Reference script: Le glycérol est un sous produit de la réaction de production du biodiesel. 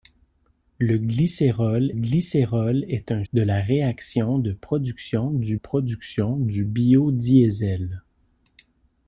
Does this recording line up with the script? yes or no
no